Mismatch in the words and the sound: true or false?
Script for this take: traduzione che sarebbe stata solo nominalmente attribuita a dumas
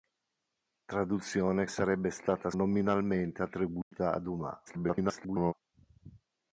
true